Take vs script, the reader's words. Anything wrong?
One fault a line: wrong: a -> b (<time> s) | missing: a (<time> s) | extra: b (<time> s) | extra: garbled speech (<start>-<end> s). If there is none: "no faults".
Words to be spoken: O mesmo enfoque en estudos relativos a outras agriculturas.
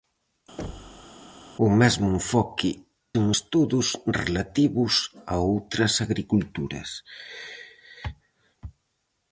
no faults